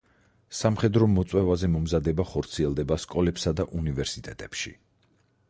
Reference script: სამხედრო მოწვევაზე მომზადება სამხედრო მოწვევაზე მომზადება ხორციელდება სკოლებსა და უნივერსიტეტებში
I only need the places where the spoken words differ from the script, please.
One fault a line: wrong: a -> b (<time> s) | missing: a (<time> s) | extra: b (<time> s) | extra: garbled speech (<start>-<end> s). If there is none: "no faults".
missing: სამხედრო მოწვევაზე მომზადება (2.2 s)